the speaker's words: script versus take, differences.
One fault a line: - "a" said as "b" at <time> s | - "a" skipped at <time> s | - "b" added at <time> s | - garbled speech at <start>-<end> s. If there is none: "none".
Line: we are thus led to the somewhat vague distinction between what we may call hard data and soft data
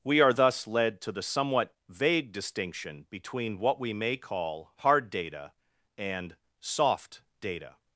none